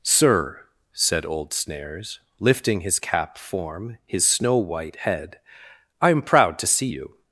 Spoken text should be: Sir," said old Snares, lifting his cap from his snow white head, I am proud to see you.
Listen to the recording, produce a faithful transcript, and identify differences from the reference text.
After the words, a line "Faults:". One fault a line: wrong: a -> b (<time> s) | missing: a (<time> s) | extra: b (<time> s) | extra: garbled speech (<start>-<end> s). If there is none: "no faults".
Sir," said old Snares, lifting his cap form his snow white head, I am proud to see you.
Faults:
wrong: from -> form (3.4 s)